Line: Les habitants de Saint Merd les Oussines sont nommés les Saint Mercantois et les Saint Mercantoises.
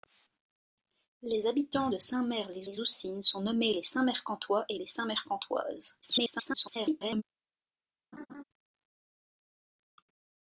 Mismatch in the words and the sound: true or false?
true